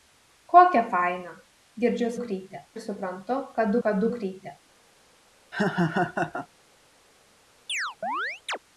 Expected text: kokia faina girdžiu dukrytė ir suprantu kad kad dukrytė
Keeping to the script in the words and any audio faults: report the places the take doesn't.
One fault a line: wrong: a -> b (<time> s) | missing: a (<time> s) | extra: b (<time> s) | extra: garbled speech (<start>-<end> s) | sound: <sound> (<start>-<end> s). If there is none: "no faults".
sound: laugh (5.5-6.5 s)
sound: chirp (7.7-8.6 s)